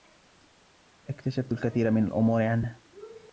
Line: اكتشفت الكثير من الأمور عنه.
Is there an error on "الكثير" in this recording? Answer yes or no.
no